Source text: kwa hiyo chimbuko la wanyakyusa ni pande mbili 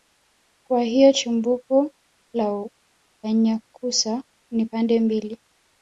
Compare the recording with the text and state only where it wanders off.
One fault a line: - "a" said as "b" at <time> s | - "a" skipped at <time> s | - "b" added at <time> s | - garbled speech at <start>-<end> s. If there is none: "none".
none